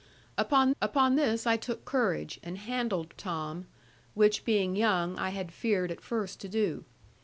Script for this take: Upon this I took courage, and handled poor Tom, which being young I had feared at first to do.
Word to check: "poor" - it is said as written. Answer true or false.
false